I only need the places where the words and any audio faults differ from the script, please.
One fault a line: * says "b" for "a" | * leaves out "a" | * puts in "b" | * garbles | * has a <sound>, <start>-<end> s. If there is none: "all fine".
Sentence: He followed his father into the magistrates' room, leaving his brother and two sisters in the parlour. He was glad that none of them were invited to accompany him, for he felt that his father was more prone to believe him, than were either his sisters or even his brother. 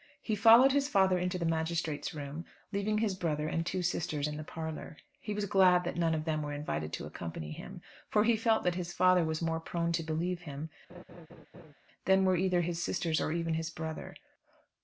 * has a laugh, 10.9-11.7 s